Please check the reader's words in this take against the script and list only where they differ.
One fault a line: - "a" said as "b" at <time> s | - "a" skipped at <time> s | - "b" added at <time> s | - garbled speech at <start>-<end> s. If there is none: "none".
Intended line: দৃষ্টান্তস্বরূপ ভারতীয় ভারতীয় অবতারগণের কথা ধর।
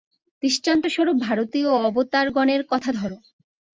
- "ভারতীয়" skipped at 1.7 s